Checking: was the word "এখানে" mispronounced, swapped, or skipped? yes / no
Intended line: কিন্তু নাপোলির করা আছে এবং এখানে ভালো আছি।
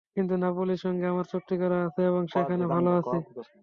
yes